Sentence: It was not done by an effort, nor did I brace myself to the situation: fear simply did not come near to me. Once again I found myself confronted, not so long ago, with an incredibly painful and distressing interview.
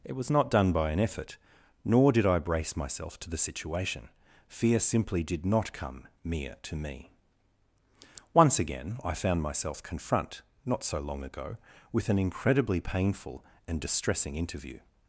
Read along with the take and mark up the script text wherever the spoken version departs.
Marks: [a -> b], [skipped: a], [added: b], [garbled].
It was not done by an effort, nor did I brace myself to the situation: fear simply did not come [near -> mere] to me. Once again I found myself [confronted, -> confront] not so long ago, with an incredibly painful and distressing interview.